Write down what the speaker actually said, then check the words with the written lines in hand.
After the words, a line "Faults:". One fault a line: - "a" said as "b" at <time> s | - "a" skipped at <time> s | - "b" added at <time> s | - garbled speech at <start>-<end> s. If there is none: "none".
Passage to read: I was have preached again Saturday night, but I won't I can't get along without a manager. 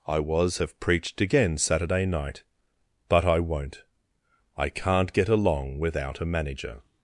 I was have preached again Saturday night, but I won't I can't get along without a manager.
Faults:
none